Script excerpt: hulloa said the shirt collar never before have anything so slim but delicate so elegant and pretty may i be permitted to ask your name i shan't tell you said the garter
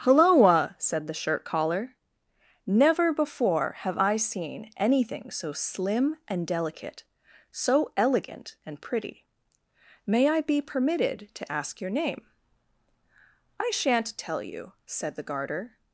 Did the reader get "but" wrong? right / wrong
wrong